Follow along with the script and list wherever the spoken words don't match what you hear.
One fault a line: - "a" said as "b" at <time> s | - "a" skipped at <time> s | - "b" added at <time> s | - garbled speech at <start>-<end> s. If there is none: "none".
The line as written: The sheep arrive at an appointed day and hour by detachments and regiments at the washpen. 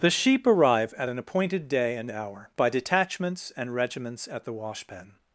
none